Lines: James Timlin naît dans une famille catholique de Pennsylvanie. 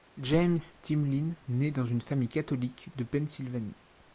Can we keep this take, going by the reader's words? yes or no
yes